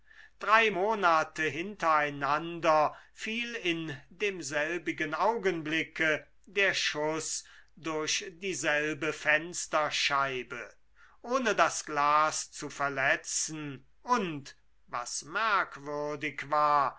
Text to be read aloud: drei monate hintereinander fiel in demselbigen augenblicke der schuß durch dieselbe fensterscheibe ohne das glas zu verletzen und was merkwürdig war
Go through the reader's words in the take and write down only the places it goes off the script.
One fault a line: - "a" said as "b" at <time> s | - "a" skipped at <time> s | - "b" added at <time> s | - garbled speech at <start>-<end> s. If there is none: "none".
none